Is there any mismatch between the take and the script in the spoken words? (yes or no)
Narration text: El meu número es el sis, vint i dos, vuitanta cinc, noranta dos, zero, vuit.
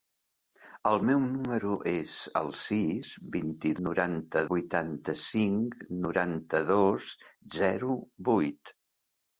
yes